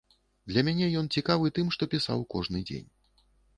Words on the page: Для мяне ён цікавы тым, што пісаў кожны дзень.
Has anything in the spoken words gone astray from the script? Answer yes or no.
no